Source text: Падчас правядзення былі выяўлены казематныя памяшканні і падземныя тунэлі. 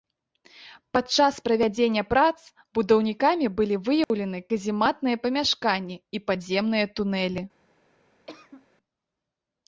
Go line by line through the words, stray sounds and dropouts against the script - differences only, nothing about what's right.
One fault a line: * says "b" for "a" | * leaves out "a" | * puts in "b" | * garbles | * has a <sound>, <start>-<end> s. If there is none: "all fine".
* puts in "прац будаўнікамі"
* has a dropout, 4.0-4.1 s
* has a cough, 8.3-8.7 s